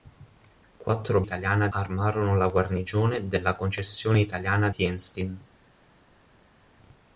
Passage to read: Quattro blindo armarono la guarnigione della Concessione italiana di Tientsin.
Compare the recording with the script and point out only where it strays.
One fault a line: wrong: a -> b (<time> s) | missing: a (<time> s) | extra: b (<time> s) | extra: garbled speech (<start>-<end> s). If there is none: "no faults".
wrong: blindo -> italiana (1.2 s)
missing: di (4.7 s)